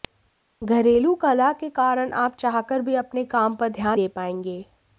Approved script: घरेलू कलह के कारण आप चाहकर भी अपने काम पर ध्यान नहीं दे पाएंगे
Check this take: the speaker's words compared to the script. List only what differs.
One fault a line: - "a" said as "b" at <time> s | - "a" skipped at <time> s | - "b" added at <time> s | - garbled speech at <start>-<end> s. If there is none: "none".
- "नहीं" skipped at 4.0 s